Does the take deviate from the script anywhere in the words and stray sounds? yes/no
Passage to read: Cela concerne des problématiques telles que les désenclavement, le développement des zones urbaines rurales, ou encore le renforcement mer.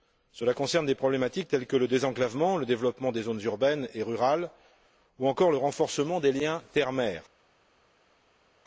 yes